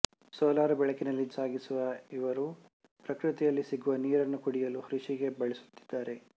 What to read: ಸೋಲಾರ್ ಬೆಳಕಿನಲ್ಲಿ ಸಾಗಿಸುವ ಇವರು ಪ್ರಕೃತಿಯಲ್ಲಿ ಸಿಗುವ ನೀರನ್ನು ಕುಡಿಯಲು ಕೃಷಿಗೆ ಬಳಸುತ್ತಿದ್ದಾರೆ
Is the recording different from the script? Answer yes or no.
no